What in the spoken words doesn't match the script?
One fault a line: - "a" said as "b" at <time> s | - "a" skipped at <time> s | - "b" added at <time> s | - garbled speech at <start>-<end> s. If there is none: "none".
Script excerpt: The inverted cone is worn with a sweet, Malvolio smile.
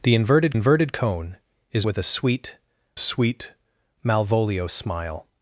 - "inverted" added at 0.5 s
- "worn" skipped at 1.9 s
- "sweet" added at 3.0 s